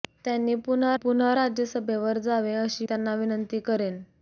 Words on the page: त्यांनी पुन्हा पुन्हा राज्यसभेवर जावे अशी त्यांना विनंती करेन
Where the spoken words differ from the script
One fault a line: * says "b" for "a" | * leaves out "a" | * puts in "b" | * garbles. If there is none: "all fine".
all fine